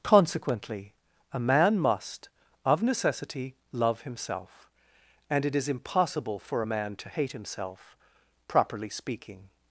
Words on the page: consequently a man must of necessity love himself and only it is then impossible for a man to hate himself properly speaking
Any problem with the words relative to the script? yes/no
yes